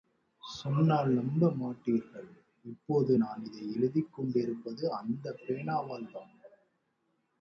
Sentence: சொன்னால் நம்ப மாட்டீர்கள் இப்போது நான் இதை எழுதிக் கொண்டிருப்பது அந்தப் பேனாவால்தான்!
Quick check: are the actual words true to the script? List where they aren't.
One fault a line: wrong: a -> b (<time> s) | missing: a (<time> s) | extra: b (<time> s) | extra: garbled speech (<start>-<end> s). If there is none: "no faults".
no faults